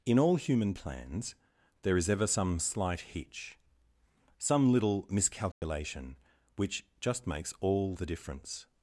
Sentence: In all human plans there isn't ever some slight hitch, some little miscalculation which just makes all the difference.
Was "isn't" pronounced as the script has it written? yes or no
no